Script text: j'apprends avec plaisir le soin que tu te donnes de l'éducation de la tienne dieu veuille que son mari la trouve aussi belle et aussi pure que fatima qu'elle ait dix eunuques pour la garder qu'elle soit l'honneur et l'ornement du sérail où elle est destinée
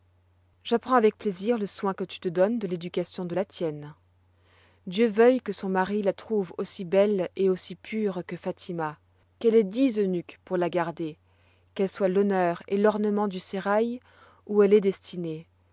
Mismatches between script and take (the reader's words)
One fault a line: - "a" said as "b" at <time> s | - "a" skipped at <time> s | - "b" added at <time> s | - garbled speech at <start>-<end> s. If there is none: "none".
none